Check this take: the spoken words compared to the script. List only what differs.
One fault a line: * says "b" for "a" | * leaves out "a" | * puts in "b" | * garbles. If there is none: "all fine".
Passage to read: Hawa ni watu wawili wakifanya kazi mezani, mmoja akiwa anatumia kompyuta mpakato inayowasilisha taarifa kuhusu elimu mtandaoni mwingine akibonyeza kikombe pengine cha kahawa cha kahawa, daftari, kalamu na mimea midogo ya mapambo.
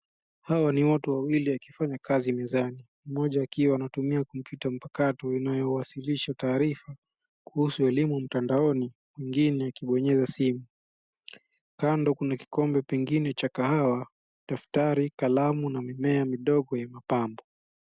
* puts in "simu Kando kuna"
* leaves out "cha kahawa"